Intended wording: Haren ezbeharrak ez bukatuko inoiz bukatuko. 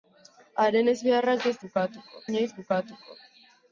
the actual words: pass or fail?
pass